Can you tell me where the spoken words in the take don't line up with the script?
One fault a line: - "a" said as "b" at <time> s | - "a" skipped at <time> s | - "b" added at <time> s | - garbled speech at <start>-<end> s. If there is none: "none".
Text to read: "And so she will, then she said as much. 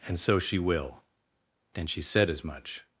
none